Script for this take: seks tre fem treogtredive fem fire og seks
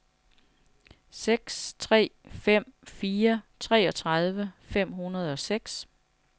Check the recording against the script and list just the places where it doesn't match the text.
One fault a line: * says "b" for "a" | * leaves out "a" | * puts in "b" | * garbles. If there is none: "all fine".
* puts in "fire"
* says "hundrede" for "fire"